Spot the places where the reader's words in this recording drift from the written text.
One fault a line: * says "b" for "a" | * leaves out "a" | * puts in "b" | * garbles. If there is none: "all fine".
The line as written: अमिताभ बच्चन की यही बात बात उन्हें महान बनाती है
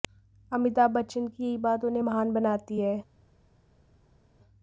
* leaves out "बात"